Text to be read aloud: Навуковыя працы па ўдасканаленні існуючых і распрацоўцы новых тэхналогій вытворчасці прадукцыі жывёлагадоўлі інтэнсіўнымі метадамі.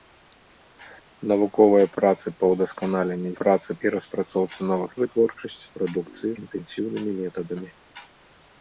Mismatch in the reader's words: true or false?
true